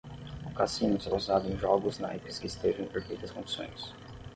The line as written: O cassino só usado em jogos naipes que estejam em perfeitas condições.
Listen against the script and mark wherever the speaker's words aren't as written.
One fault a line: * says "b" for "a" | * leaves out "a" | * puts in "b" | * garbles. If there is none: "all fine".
all fine